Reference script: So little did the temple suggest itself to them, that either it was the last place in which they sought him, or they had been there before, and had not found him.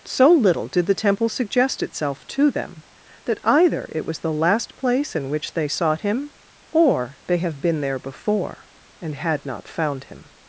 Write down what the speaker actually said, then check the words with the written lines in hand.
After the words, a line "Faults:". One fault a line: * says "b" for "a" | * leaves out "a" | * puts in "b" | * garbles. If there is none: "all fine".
So little did the temple suggest itself to them, that either it was the last place in which they sought him, or they have been there before, and had not found him.
Faults:
* says "have" for "had"